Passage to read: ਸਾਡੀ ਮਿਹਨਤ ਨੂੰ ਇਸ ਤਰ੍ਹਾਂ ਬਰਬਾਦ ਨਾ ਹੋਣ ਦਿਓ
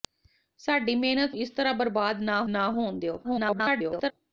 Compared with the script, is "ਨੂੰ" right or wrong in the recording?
wrong